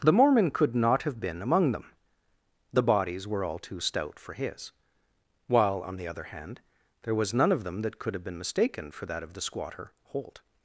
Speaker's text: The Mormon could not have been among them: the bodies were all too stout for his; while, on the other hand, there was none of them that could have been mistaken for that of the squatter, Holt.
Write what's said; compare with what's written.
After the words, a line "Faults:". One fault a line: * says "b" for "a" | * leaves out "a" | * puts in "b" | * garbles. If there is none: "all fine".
The Mormon could not have been among them: the bodies were all too stout for his; while, on the other hand, there was none of them that could have been mistaken for that of the squatter, Holt.
Faults:
all fine